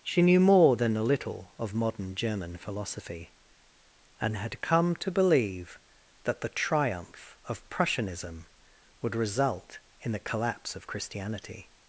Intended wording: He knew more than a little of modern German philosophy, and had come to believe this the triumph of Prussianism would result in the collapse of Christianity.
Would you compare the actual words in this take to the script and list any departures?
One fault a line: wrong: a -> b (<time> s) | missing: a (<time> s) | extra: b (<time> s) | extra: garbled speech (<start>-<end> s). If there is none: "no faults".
wrong: He -> She (0.0 s)
wrong: this -> that (6.2 s)